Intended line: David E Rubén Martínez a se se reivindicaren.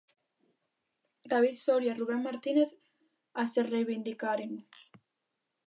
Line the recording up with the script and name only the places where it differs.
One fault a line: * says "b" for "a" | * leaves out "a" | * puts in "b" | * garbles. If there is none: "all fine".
* puts in "Soria"
* leaves out "se"